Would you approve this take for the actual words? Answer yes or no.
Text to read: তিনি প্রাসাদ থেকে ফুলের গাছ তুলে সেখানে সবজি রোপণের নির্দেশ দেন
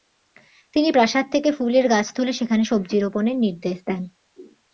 yes